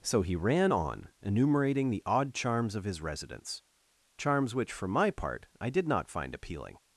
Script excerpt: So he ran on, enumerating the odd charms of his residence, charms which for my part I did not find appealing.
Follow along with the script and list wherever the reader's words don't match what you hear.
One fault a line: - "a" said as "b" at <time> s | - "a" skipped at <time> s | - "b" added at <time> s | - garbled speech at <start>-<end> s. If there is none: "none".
none